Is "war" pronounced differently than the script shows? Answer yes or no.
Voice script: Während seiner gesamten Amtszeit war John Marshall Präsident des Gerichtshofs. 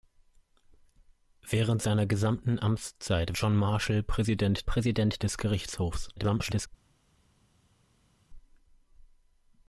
yes